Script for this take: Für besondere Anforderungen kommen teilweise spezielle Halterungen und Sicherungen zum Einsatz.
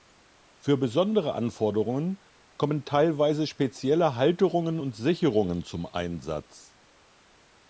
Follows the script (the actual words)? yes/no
yes